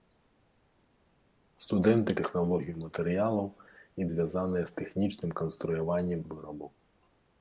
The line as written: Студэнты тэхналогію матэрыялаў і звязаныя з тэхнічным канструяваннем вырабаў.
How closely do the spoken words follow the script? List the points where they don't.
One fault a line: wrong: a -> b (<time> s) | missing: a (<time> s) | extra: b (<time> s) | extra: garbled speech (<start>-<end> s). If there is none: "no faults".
no faults